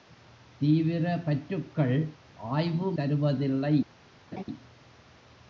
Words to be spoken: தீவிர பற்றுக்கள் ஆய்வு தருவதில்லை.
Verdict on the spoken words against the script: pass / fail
pass